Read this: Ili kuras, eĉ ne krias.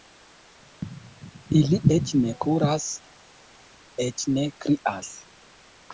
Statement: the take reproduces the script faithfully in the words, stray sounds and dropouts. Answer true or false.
false